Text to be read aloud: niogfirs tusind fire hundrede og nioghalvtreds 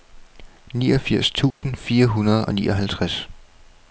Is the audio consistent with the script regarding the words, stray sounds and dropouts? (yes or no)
no